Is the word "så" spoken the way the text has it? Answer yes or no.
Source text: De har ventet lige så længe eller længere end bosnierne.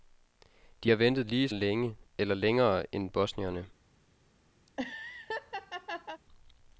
no